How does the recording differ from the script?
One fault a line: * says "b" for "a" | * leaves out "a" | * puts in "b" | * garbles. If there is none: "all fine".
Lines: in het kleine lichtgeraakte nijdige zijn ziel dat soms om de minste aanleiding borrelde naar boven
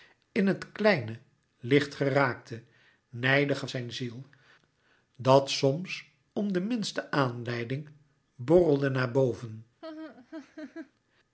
all fine